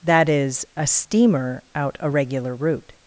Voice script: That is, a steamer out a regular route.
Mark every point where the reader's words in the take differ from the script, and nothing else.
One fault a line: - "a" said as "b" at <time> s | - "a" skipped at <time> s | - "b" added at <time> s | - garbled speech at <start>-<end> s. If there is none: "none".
none